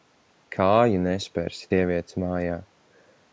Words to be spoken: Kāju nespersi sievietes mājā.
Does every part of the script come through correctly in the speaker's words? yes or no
yes